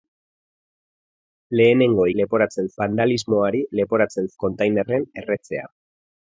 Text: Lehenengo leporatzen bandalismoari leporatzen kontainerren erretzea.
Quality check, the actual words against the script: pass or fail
pass